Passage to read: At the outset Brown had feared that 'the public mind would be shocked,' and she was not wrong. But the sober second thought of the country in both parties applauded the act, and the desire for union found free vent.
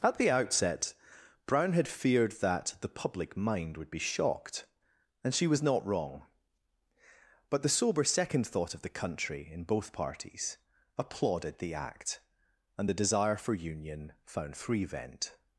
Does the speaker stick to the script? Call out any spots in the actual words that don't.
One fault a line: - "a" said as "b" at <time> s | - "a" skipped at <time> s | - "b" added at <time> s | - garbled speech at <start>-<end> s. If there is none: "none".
none